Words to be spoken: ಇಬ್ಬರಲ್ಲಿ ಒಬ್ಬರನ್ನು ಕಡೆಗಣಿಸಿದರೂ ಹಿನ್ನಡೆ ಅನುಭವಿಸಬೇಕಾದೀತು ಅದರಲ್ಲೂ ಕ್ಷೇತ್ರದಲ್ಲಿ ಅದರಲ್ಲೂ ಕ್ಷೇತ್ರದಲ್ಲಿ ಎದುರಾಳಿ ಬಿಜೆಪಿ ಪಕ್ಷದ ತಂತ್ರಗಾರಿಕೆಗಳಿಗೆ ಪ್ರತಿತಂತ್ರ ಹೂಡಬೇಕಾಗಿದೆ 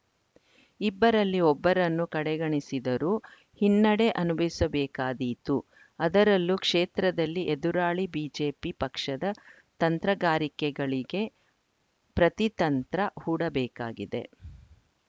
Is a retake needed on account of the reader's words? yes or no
yes